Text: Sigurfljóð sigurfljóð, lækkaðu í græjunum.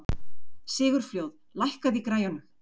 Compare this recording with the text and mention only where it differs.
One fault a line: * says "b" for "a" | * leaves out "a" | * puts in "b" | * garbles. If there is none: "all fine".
* leaves out "sigurfljóð"